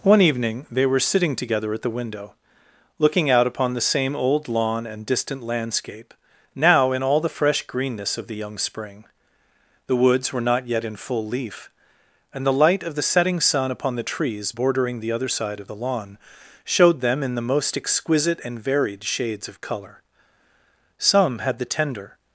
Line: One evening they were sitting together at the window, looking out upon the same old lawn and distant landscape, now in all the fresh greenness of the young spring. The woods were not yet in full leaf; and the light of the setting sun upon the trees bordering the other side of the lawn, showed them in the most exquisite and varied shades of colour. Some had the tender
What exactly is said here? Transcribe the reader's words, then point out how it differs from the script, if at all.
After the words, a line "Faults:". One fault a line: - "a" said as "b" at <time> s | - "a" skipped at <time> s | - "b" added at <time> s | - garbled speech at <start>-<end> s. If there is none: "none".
One evening they were sitting together at the window, looking out upon the same old lawn and distant landscape, now in all the fresh greenness of the young spring. The woods were not yet in full leaf; and the light of the setting sun upon the trees bordering the other side of the lawn, showed them in the most exquisite and varied shades of colour. Some had the tender
Faults:
none